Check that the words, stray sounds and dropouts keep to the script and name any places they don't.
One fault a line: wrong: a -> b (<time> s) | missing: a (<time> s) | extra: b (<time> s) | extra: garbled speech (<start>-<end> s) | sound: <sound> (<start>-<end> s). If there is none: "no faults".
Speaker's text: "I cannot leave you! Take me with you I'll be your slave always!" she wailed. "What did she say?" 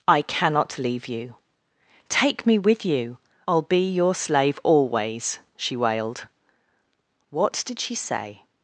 no faults